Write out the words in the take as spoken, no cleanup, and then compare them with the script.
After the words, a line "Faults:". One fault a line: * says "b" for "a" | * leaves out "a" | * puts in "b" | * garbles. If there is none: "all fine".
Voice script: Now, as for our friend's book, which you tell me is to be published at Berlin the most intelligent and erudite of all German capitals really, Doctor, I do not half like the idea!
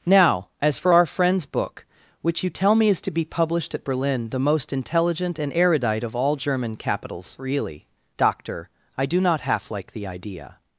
Now, as for our friend's book, which you tell me is to be published at Berlin the most intelligent and erudite of all German capitals really, Doctor, I do not half like the idea!
Faults:
all fine